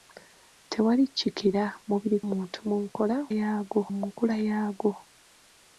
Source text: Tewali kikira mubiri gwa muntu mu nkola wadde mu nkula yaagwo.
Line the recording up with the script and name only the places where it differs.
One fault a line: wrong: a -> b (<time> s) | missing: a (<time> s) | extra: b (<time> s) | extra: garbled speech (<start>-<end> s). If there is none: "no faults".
missing: gwa (2.2 s)
wrong: wadde -> yaagwo (3.4 s)